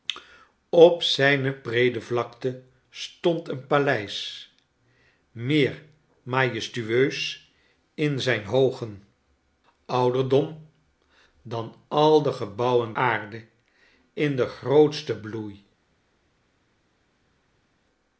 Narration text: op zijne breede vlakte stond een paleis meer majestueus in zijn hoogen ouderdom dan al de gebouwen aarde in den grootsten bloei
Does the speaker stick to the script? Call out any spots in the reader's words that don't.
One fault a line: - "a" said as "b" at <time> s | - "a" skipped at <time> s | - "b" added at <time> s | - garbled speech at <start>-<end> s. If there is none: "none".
none